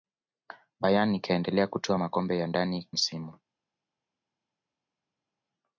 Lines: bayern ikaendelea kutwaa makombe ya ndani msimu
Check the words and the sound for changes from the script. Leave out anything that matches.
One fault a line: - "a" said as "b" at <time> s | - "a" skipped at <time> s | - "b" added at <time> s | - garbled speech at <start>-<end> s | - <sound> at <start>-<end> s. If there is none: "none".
none